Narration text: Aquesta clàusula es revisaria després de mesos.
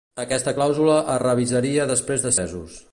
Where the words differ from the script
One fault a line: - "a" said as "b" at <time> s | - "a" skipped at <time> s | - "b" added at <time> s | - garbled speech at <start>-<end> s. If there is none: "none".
none